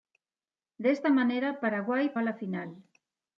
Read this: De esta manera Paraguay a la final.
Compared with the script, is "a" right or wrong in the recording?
right